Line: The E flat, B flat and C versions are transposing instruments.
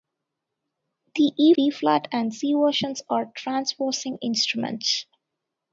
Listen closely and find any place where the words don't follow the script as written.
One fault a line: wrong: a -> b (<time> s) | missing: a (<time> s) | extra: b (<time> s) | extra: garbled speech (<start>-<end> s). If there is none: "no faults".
missing: flat (1.5 s)